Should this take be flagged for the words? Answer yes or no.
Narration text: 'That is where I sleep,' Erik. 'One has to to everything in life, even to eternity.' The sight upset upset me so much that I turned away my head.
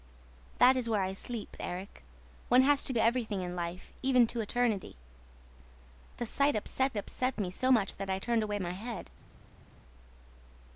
no